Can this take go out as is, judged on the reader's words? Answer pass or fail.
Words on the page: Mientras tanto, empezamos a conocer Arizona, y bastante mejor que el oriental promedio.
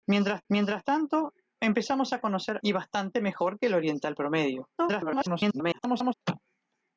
fail